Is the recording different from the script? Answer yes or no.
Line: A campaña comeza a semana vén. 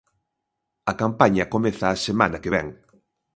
yes